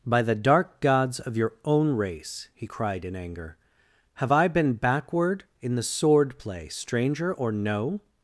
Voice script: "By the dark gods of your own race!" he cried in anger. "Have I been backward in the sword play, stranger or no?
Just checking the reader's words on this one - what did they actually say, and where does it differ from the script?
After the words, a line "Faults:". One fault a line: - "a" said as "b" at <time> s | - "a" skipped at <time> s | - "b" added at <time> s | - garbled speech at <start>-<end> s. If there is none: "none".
"By the dark gods of your own race!" he cried in anger. "Have I been backward in the sword play, stranger or no?
Faults:
none